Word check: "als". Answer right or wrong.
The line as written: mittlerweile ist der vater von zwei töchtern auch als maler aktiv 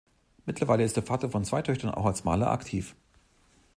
right